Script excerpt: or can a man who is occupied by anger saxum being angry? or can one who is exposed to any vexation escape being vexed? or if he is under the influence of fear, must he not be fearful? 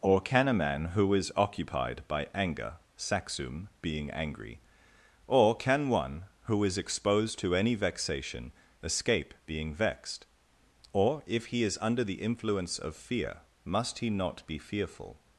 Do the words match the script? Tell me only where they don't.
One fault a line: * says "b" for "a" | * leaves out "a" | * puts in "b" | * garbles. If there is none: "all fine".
all fine